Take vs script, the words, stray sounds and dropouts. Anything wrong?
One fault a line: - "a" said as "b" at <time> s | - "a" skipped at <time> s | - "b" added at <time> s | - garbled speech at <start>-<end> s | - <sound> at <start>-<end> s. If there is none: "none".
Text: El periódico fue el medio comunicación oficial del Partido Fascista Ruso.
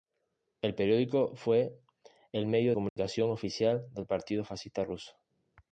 - dropout at 2.9-3.0 s